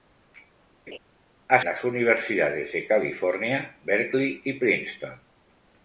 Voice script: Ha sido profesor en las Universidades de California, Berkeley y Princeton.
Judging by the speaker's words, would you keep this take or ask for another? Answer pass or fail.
fail